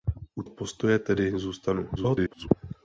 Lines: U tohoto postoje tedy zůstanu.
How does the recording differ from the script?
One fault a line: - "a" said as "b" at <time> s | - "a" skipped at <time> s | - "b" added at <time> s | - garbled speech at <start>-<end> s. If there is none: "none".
- "tohoto" skipped at 0.4 s
- garbled speech at 2.0-2.5 s